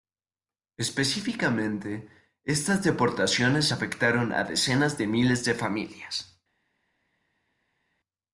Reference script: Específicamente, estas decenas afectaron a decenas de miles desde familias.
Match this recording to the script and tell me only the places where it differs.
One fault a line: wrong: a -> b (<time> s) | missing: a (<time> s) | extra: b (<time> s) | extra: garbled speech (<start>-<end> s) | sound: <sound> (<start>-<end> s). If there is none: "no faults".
wrong: decenas -> deportaciones (2.8 s)
wrong: desde -> de (5.4 s)